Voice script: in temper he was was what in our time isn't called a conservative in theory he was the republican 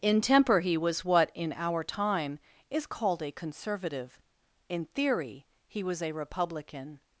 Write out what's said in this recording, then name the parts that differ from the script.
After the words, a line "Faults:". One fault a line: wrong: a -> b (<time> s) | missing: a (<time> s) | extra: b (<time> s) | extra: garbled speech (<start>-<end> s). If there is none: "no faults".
in temper he was what in our time is called a conservative in theory he was a republican
Faults:
missing: was (1.1 s)
wrong: isn't -> is (2.7 s)
wrong: the -> a (6.0 s)